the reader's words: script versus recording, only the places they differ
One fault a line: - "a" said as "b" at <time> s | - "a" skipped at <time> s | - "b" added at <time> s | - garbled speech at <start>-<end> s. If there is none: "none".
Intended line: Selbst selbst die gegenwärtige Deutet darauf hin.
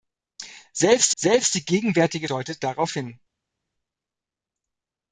none